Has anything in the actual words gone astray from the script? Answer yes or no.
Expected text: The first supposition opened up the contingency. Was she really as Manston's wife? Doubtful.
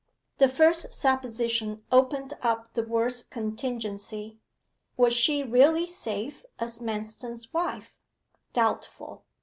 yes